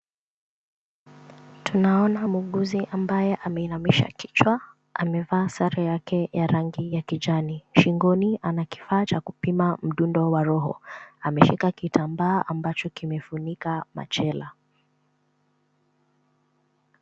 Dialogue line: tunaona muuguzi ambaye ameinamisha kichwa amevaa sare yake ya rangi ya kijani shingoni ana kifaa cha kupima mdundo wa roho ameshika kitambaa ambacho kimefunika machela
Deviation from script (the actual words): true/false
false